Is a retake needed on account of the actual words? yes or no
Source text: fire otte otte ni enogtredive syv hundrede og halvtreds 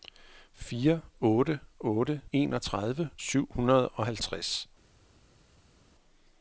yes